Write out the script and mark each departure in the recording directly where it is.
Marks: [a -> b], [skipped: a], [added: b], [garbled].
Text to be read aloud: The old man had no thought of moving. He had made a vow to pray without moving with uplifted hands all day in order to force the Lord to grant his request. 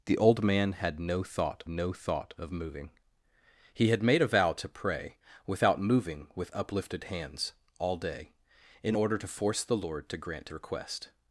The old man had no thought [added: no thought] of moving. He had made a vow to pray without moving with uplifted hands all day in order to force the Lord to grant [skipped: his] request.